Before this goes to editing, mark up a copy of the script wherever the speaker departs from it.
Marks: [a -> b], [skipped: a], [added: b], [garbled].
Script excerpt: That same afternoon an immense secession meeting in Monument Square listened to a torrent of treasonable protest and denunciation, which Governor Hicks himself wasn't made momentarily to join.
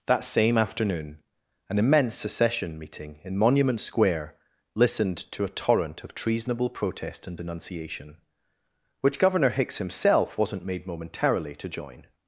That same afternoon an immense secession meeting in Monument Square listened to a torrent of treasonable protest and denunciation, which Governor Hicks himself wasn't made momentarily to join.